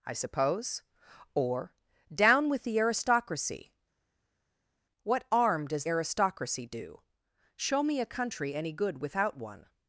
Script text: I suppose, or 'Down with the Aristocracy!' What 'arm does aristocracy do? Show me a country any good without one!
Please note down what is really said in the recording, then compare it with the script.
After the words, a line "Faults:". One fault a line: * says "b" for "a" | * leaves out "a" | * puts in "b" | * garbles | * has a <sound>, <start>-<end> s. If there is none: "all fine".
I suppose, or 'Down with the Aristocracy!' What 'arm does aristocracy do? Show me a country any good without one!
Faults:
all fine